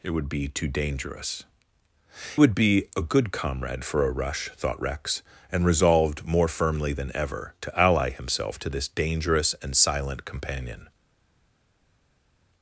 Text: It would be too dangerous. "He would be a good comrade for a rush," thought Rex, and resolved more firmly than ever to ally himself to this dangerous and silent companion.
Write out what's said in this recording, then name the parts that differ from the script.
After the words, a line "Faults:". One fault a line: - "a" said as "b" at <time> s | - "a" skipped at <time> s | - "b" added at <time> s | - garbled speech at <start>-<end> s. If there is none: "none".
It would be too dangerous. "Would be a good comrade for a rush," thought Rex, and resolved more firmly than ever to ally himself to this dangerous and silent companion.
Faults:
- "He" skipped at 1.4 s